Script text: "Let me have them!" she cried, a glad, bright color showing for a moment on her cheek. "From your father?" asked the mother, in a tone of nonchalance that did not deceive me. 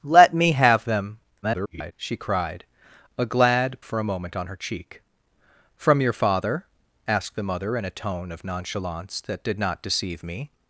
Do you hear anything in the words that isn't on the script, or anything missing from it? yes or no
yes